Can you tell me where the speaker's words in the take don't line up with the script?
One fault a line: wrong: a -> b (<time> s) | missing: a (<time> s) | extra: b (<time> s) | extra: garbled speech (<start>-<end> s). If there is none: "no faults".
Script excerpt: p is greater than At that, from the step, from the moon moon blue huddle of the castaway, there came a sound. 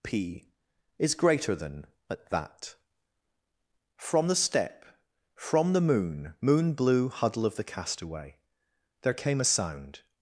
no faults